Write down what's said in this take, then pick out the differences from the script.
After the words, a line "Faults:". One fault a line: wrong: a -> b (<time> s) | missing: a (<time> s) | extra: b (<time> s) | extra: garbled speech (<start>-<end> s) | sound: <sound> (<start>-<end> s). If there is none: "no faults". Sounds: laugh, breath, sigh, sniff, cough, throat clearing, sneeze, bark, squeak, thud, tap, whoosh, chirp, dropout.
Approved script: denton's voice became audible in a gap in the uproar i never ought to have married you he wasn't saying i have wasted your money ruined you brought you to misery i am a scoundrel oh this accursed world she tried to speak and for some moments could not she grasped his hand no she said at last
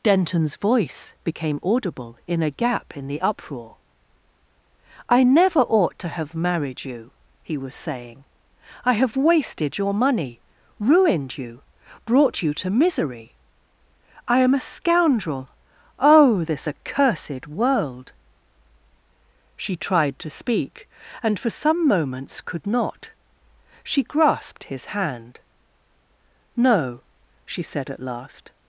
denton's voice became audible in a gap in the uproar i never ought to have married you he was saying i have wasted your money ruined you brought you to misery i am a scoundrel oh this accursed world she tried to speak and for some moments could not she grasped his hand no she said at last
Faults:
wrong: wasn't -> was (7.5 s)